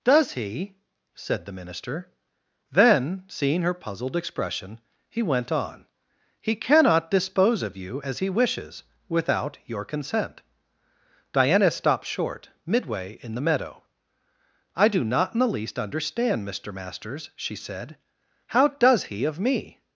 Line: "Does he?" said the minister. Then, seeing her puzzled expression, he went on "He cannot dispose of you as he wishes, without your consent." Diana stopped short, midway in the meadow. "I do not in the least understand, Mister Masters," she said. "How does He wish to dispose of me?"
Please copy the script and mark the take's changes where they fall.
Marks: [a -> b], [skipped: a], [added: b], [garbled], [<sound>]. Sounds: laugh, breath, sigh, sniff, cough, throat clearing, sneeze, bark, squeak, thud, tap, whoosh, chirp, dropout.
"Does he?" said the minister. Then, seeing her puzzled expression, he went on "He cannot dispose of you as he wishes, without your consent." Diana stopped short, midway in the meadow. "I do not in the least understand, Mister Masters," she said. "How does He [skipped: wish to dispose] of me?"